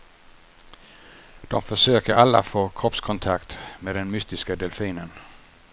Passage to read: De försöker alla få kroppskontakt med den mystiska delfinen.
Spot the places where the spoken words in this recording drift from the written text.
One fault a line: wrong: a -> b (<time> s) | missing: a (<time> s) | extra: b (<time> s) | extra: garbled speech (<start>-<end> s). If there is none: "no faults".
no faults